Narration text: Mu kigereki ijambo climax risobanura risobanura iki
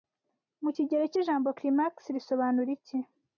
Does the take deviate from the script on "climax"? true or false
false